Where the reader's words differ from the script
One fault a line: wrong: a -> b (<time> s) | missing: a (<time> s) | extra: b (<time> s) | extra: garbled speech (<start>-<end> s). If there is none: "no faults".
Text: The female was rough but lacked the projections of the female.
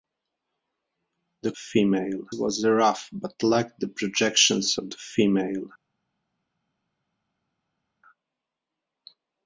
no faults